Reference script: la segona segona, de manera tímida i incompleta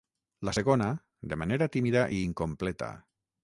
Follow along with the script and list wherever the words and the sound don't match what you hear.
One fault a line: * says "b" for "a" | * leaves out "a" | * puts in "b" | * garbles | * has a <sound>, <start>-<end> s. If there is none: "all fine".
* leaves out "segona"